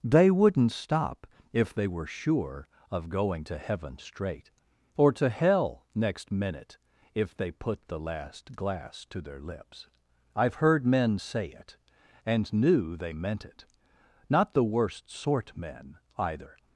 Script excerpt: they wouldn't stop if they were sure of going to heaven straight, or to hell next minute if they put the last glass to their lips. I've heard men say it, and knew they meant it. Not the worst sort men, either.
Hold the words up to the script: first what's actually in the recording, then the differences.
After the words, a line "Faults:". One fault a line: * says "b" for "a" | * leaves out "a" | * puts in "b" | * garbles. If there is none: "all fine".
they wouldn't stop if they were sure of going to heaven straight, or to hell next minute if they put the last glass to their lips. I've heard men say it, and knew they meant it. Not the worst sort men, either.
Faults:
all fine